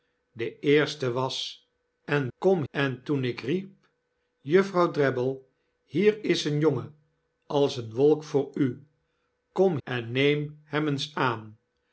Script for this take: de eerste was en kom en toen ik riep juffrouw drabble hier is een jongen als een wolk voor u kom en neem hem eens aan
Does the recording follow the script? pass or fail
pass